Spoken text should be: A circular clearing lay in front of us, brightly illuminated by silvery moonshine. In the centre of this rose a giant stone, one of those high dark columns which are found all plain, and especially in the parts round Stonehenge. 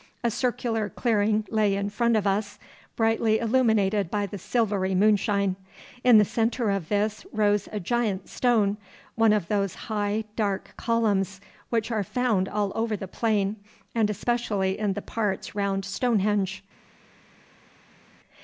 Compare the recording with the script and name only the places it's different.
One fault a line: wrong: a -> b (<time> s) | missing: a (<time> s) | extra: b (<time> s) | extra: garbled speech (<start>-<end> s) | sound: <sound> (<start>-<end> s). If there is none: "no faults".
extra: the (4.2 s)
extra: over the (12.8 s)